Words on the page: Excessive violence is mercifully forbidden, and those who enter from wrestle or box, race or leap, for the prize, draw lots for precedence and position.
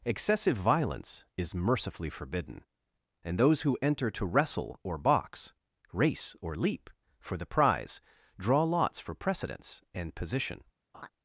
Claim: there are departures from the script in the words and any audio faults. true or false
true